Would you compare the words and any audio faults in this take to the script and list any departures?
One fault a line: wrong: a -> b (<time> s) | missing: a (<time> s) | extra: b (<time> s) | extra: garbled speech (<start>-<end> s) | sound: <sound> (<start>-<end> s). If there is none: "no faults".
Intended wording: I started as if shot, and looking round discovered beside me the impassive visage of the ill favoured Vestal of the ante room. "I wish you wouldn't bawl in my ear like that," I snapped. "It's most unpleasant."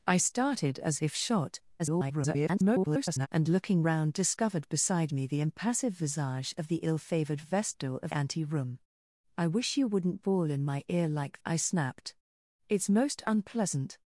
extra: garbled speech (1.8-3.3 s)
missing: the (8.1 s)
missing: that (11.4 s)